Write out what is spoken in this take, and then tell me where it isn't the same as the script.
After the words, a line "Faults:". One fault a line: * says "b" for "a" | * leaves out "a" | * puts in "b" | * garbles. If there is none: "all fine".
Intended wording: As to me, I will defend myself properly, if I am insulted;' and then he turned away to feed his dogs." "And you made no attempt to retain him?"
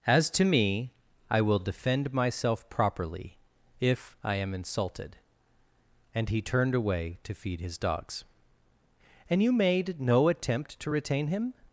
As to me, I will defend myself properly, if I am insulted;' and he turned away to feed his dogs." "And you made no attempt to retain him?"
Faults:
* leaves out "then"